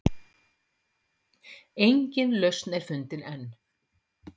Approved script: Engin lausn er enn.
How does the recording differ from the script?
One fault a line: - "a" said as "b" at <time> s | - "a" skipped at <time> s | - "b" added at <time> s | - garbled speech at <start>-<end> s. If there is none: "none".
- "fundin" added at 2.9 s